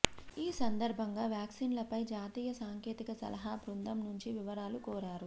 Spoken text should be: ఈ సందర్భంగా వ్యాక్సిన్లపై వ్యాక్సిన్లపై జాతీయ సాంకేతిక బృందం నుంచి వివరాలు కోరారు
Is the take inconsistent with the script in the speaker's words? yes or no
yes